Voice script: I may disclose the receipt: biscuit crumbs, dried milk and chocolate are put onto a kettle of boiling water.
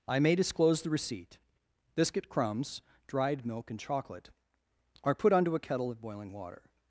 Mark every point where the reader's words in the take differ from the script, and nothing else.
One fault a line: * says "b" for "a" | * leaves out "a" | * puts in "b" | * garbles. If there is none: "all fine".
all fine